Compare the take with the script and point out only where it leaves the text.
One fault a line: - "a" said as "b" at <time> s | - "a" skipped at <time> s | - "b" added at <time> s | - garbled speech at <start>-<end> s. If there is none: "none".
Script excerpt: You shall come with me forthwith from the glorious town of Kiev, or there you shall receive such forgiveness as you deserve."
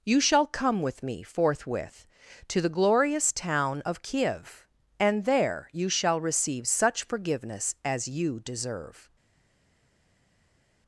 - "from" said as "to" at 2.5 s
- "or" said as "and" at 5.0 s